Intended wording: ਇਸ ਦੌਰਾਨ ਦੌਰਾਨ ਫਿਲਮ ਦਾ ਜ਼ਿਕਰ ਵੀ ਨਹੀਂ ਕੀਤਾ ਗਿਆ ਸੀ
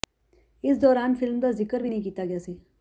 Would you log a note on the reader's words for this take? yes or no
yes